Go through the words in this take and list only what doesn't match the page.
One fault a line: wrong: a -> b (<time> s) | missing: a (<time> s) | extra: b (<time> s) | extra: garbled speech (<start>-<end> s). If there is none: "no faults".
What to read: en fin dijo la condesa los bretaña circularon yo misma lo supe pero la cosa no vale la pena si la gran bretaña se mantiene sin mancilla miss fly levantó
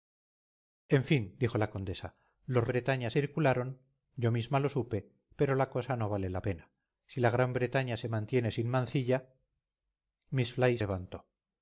no faults